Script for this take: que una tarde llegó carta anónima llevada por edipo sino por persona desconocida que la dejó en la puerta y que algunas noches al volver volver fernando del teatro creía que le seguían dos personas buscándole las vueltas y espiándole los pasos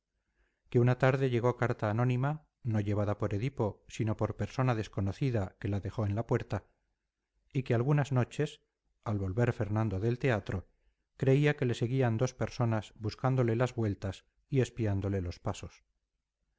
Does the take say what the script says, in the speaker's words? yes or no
no